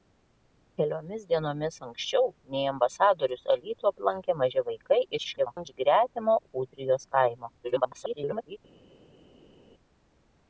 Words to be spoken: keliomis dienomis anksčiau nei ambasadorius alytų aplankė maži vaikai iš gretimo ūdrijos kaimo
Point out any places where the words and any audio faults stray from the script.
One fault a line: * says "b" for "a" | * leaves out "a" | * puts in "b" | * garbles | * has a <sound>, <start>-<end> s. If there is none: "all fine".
* garbles
* garbles